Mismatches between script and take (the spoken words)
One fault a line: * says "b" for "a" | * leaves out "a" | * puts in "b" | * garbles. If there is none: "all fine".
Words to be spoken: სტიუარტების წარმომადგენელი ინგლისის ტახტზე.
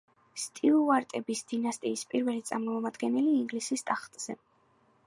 * puts in "დინასტიის პირველი"